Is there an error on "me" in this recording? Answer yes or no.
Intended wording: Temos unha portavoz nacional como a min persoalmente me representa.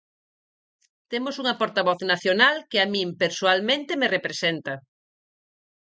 no